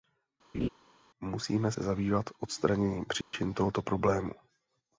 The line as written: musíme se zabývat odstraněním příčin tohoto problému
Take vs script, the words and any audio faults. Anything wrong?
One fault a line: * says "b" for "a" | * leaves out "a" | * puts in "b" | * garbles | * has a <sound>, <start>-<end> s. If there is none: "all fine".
* has a laugh, 0.5-0.7 s
* has a dropout, 3.2-3.3 s